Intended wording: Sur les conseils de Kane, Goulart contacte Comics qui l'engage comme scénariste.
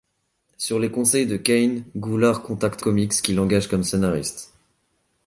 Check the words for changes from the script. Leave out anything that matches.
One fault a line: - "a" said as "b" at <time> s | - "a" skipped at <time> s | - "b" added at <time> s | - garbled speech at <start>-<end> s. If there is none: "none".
none